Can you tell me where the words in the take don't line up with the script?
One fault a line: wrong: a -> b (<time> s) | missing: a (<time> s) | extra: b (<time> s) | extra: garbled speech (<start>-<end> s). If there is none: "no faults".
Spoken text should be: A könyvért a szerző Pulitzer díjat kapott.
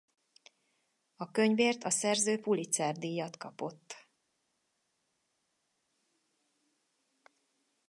no faults